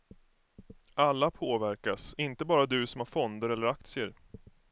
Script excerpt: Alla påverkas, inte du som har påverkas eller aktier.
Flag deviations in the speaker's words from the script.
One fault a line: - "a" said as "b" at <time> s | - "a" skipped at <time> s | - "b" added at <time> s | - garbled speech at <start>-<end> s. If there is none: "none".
- "bara" added at 2.5 s
- "påverkas" said as "fonder" at 3.1 s